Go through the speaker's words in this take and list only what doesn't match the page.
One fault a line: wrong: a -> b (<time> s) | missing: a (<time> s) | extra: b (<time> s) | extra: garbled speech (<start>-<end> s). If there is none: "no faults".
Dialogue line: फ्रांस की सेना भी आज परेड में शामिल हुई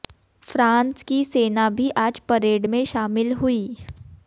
no faults